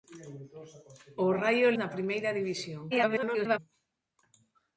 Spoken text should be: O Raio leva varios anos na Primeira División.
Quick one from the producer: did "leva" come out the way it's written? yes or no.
no